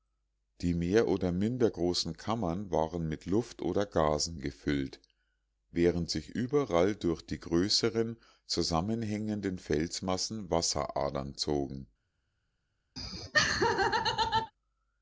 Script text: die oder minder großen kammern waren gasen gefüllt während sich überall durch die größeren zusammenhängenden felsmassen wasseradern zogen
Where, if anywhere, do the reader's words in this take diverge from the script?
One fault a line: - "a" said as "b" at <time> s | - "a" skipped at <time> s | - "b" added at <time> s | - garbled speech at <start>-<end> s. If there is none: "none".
- "mehr" added at 0.7 s
- "mit luft oder" added at 3.1 s